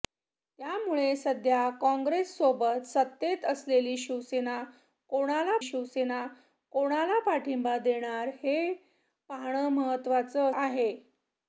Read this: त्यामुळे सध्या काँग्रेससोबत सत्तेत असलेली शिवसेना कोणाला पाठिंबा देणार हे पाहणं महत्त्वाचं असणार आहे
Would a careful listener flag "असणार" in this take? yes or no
yes